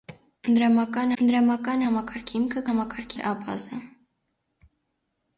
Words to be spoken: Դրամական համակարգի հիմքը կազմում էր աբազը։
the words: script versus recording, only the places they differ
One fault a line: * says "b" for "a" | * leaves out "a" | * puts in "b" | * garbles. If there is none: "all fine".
* puts in "դրամական"
* says "համակարգի" for "կազմում"